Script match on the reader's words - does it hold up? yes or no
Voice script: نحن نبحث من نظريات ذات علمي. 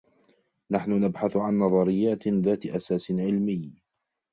no